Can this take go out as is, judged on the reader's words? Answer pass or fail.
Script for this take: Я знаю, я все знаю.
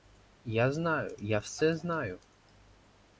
pass